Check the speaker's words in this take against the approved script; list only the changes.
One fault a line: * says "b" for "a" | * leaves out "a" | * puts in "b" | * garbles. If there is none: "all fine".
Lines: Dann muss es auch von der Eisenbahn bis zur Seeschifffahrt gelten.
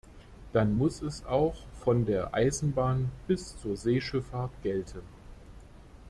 all fine